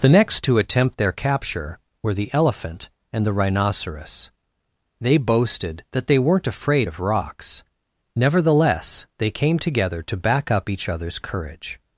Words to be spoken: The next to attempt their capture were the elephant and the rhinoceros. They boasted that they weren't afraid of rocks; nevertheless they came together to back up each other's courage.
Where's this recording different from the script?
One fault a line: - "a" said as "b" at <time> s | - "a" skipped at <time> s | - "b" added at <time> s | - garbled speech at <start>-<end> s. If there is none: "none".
none